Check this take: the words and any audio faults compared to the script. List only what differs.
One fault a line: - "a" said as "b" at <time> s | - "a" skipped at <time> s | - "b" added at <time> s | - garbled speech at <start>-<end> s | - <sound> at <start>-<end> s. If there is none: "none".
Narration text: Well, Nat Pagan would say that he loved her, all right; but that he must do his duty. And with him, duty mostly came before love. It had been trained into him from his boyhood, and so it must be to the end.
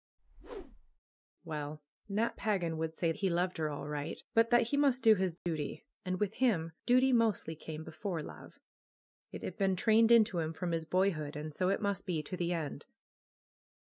- whoosh at 0.2-1.0 s
- "that" skipped at 3.1 s
- dropout at 5.4-5.5 s